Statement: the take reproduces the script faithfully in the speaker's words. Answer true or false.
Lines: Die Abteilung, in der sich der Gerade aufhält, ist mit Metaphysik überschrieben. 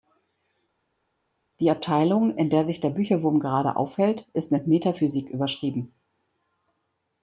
false